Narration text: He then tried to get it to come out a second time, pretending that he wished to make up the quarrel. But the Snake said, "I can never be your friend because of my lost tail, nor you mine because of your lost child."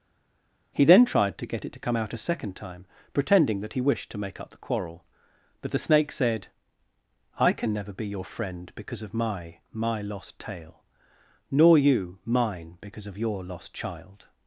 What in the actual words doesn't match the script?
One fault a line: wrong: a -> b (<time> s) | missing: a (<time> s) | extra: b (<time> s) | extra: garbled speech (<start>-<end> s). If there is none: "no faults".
extra: my (9.7 s)